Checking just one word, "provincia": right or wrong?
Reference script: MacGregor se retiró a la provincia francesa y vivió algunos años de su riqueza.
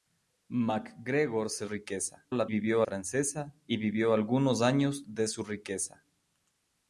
wrong